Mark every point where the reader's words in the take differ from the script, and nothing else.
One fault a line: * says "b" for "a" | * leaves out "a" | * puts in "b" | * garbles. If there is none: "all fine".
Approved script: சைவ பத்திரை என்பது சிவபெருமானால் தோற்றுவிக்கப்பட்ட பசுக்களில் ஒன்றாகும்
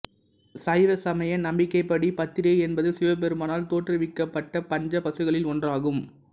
* puts in "சமய நம்பிக்கைப்படி"
* puts in "பஞ்ச"